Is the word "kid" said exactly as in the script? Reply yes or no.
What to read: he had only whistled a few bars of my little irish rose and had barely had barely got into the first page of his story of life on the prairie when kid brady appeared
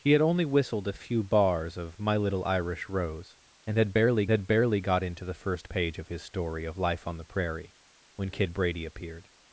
yes